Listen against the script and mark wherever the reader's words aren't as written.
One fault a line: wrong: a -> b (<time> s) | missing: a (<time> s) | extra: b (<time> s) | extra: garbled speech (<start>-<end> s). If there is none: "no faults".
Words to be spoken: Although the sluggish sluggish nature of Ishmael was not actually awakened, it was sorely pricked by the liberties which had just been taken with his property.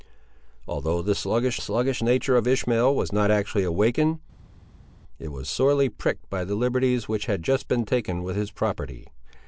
no faults